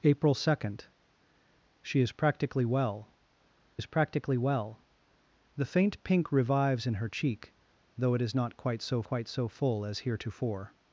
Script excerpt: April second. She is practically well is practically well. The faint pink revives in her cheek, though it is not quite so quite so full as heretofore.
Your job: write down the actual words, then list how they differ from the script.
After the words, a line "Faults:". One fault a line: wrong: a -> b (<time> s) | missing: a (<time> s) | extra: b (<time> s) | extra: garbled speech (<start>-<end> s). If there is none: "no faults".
April second. She is practically well is practically well. The faint pink revives in her cheek, though it is not quite so quite so full as heretofore.
Faults:
no faults